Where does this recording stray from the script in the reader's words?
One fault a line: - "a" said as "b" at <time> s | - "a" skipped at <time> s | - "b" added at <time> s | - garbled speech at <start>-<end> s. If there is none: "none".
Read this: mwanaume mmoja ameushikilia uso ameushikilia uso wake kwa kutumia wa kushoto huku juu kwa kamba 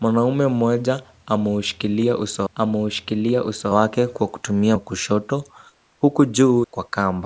none